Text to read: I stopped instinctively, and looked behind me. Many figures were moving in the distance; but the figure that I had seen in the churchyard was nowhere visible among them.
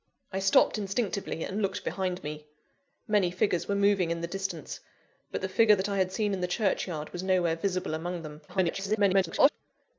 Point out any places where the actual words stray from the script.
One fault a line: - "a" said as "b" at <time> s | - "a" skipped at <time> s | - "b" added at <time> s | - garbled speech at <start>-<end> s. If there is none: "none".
- garbled speech at 8.5-9.5 s